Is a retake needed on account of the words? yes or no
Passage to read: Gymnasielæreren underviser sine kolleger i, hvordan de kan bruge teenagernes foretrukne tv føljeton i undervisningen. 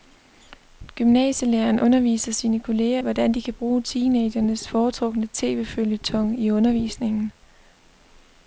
yes